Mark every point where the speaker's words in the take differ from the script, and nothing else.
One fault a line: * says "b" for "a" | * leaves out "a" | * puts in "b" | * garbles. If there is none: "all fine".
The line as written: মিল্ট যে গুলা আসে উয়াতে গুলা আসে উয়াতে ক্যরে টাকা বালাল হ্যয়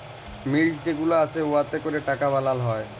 * leaves out "গুলা আসে উয়াতে"